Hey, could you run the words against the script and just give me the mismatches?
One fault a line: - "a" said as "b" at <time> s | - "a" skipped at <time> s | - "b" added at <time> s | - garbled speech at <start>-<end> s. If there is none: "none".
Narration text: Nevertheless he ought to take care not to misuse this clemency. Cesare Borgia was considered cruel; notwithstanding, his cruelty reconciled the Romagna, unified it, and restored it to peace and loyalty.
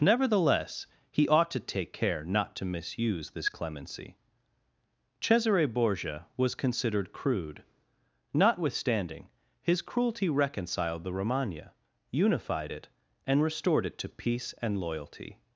- "cruel" said as "crude" at 7.1 s